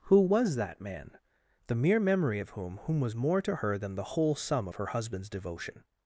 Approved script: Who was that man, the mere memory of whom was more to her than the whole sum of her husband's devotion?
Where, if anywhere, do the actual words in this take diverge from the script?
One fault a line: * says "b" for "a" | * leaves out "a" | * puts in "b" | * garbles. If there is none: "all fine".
* puts in "whom"